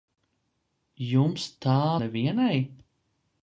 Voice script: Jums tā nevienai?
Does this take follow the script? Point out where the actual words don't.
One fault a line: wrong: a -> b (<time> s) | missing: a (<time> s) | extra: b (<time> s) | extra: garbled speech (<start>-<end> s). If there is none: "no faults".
no faults